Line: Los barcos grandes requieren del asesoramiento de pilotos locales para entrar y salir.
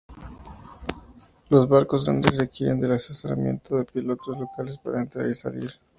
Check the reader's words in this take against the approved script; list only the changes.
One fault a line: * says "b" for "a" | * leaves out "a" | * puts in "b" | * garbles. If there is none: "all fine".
all fine